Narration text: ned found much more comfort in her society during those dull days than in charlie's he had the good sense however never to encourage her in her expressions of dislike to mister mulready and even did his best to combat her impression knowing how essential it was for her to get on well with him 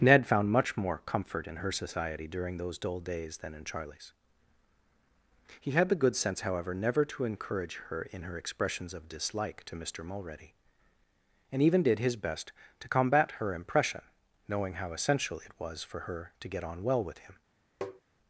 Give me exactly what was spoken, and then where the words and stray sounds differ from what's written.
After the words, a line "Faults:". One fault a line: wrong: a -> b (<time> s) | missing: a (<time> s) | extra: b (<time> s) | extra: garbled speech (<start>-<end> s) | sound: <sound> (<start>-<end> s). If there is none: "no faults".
ned found much more comfort in her society during those dull days than in charlie's he had the good sense however never to encourage her in her expressions of dislike to mister mulready and even did his best to combat her impression knowing how essential it was for her to get on well with him
Faults:
sound: tap (17.8-18.0 s)